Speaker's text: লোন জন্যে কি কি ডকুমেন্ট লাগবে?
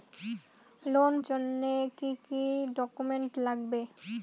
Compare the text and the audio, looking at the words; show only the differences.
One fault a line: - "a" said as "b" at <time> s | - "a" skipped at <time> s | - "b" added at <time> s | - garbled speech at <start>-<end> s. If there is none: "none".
none